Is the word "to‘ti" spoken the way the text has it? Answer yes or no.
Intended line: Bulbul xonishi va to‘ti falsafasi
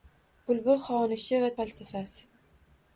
no